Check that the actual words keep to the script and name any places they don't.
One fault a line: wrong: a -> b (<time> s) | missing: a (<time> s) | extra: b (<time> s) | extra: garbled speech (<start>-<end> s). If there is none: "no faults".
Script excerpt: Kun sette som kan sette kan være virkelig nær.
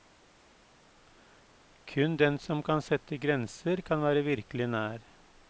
wrong: sette -> den (2.2 s)
extra: grenser (3.3 s)